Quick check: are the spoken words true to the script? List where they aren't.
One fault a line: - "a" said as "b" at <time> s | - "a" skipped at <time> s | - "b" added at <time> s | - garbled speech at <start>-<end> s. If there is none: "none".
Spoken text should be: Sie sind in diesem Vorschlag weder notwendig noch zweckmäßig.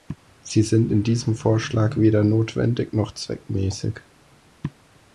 none